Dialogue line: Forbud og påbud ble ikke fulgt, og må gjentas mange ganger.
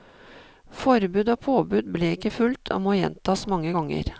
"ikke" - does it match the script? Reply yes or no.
yes